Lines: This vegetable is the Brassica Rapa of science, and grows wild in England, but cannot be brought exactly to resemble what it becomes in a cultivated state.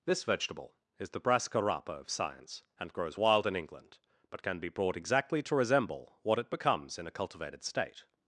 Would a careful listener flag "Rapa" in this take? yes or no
no